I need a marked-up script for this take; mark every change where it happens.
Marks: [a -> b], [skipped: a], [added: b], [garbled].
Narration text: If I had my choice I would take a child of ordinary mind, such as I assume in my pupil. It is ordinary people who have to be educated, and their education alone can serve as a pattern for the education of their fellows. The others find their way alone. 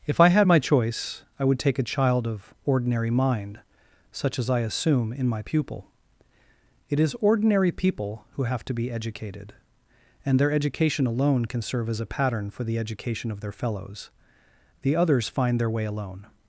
If I had my choice I would take a child of ordinary mind, such as I assume in my pupil. It is ordinary people who have to be educated, and their education alone can serve as a pattern for the education of their fellows. The others find their way alone.